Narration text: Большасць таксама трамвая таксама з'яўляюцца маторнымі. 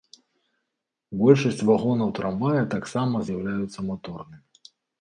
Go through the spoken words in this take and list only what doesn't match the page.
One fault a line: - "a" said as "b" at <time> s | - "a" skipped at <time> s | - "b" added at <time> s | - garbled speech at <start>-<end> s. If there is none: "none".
- "таксама" said as "вагонаў" at 1.7 s